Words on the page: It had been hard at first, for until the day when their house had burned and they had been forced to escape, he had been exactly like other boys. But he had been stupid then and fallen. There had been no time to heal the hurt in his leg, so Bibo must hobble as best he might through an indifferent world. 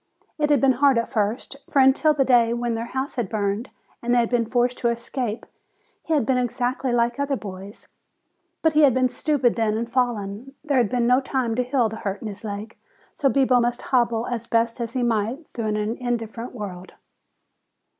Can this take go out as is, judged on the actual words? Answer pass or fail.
pass